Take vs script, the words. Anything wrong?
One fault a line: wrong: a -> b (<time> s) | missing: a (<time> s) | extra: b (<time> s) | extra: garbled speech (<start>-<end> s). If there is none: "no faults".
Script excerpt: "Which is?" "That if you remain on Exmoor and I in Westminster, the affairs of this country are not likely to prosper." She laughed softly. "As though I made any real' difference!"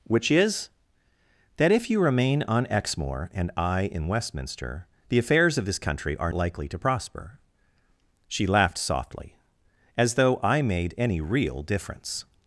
missing: not (6.3 s)